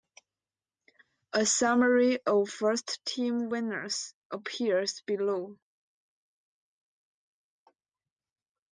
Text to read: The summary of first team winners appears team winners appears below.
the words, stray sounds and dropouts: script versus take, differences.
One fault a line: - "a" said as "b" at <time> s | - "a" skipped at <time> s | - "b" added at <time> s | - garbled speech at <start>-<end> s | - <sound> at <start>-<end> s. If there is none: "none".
- "The" said as "A" at 1.3 s
- "team winners appears" skipped at 5.0 s